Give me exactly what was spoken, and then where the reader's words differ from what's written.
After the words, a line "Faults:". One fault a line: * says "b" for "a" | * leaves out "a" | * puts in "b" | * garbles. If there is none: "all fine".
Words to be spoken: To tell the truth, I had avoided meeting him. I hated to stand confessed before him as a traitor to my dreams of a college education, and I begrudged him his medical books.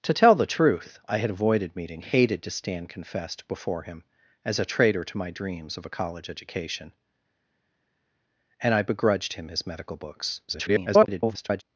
To tell the truth, I had avoided meeting hated to stand confessed before him as a traitor to my dreams of a college education, and I begrudged him his medical books. [garbled]
Faults:
* leaves out "him I"
* garbles